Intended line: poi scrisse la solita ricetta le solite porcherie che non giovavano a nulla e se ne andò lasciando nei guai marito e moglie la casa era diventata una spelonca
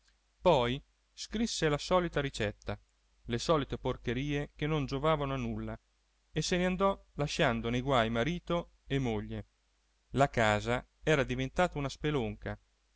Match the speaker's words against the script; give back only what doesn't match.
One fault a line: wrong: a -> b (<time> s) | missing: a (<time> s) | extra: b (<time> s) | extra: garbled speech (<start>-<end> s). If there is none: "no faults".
no faults